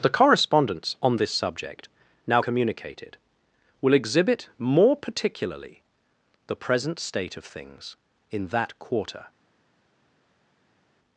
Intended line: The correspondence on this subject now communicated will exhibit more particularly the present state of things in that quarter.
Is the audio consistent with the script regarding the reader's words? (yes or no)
yes